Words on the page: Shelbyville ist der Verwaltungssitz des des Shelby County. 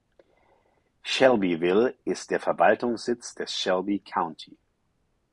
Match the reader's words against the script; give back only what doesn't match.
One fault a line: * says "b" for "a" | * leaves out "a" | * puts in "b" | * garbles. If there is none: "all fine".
* leaves out "des"